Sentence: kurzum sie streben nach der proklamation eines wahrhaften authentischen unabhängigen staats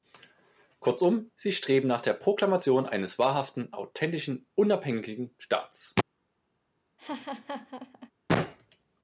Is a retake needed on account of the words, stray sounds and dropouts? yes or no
yes